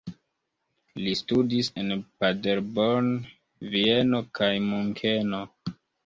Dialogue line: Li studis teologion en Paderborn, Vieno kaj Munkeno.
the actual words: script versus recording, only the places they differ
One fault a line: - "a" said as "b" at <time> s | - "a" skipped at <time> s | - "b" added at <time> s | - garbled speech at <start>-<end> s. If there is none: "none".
- "teologion" skipped at 1.7 s